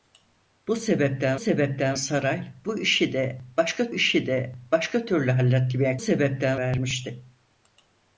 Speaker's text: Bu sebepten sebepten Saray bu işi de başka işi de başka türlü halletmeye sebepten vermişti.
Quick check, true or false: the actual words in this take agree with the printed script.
true